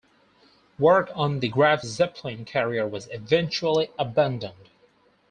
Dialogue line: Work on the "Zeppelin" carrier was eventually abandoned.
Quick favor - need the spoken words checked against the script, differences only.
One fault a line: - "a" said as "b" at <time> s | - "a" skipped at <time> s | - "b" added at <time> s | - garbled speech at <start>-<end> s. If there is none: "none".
- "Graf" added at 1.5 s